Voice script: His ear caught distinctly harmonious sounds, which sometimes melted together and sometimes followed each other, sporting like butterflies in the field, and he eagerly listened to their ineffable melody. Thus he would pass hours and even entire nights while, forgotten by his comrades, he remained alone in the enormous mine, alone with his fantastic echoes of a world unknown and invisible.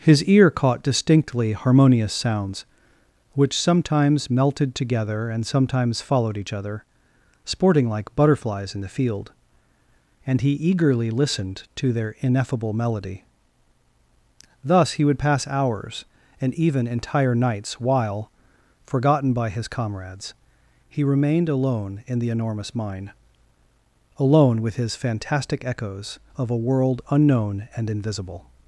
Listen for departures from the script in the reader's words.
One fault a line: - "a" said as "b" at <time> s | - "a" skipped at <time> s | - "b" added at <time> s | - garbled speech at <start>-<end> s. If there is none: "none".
none